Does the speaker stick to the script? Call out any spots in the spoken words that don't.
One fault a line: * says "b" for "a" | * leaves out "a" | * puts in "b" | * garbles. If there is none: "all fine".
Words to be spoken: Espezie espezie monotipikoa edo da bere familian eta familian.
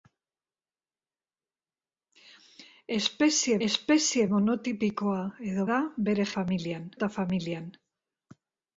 all fine